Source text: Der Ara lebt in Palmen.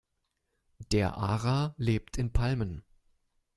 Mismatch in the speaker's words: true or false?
false